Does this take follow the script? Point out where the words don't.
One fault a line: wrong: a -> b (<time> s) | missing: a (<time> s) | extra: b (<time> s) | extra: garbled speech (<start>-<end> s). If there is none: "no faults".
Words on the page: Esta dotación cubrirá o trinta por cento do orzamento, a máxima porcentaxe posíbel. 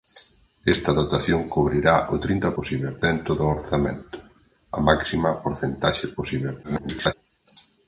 wrong: por -> posíbel (2.6 s)
extra: garbled speech (6.6-7.1 s)